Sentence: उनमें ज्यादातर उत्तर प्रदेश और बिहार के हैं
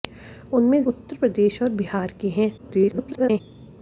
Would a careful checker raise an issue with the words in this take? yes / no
yes